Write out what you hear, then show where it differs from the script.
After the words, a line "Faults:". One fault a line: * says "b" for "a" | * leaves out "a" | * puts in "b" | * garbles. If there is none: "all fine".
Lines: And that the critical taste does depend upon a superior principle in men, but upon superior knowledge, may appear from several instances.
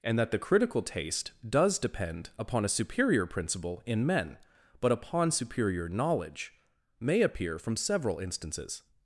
And that the critical taste does depend upon a superior principle in men, but upon superior knowledge, may appear from several instances.
Faults:
all fine